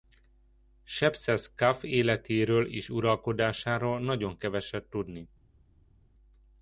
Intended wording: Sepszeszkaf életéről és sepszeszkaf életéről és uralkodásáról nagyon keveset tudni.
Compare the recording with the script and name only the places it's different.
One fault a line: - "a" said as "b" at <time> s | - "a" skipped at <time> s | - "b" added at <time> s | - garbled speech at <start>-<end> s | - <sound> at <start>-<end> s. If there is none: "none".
- "sepszeszkaf életéről és" skipped at 2.9 s